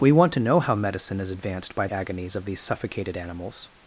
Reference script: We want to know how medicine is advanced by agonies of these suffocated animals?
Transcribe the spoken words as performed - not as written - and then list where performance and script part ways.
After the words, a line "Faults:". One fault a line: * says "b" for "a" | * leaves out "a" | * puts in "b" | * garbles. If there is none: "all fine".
We want to know how medicine is advanced by agonies of these suffocated animals?
Faults:
all fine